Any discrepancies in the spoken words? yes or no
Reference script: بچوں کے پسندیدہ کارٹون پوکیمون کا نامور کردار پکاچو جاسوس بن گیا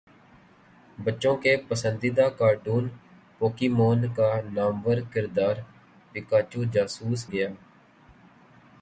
yes